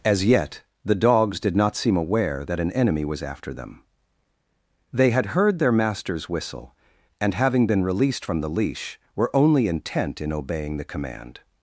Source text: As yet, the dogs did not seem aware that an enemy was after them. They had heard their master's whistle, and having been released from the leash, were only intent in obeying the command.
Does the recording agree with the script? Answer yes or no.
yes